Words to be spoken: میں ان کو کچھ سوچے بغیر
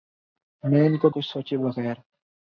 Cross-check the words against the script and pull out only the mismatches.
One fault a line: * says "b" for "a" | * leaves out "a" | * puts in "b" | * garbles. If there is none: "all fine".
all fine